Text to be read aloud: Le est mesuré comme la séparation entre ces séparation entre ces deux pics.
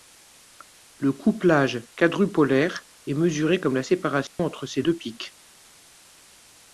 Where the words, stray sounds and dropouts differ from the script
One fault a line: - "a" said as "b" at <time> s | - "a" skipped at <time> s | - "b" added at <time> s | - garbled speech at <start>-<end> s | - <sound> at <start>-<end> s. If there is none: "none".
- "couplage quadrupolaire" added at 1.1 s
- dropout at 4.3-4.4 s
- "séparation entre ces" skipped at 4.8 s